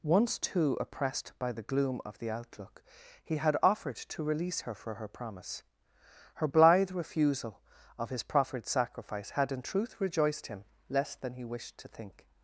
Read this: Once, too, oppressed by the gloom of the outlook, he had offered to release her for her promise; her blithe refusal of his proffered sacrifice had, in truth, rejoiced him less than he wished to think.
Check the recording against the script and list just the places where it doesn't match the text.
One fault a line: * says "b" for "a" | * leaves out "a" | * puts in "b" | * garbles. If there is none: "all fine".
all fine